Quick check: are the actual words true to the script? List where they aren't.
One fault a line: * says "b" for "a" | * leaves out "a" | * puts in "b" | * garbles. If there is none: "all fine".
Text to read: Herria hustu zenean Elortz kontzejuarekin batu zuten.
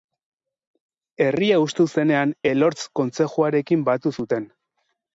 all fine